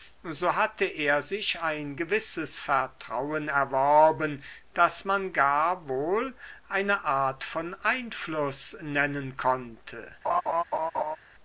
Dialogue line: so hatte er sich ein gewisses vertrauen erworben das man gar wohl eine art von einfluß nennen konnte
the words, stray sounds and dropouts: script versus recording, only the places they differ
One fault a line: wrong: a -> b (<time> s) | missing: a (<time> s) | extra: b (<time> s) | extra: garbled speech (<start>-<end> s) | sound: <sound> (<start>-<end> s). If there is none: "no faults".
sound: laugh (10.2-11.2 s)